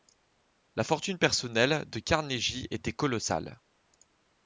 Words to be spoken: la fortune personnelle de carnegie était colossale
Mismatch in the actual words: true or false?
false